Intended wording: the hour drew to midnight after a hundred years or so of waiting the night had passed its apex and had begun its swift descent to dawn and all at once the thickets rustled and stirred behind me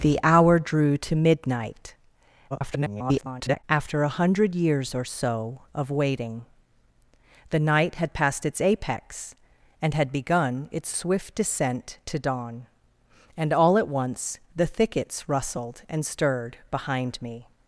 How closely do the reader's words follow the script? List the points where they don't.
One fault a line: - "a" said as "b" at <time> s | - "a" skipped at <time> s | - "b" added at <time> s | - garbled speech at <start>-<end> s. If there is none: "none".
- garbled speech at 2.5-3.6 s